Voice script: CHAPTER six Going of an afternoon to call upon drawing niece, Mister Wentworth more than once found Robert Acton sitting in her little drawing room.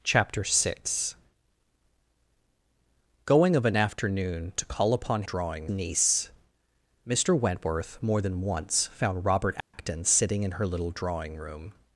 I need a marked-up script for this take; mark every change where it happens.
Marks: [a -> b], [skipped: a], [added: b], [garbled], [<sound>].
CHAPTER six Going of an afternoon to call upon drawing niece, Mister Wentworth more than once found Robert Acton [dropout] sitting in her little drawing room.